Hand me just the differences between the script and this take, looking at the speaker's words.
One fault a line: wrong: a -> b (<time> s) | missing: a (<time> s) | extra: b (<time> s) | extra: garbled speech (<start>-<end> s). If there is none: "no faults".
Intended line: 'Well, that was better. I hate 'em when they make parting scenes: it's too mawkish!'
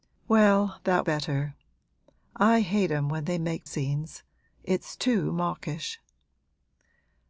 missing: was (1.1 s)
missing: parting (3.7 s)